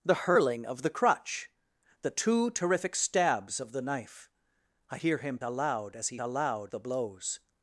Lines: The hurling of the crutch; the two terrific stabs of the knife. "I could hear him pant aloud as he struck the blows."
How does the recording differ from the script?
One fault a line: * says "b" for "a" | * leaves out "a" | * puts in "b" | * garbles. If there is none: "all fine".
* leaves out "could"
* leaves out "pant"
* says "aloud" for "struck"